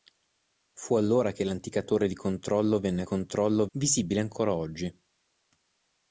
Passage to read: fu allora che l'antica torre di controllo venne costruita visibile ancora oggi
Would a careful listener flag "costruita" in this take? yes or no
yes